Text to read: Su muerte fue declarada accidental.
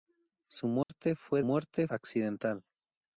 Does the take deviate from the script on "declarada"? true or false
true